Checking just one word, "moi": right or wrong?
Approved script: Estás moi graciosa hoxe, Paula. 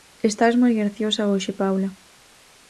right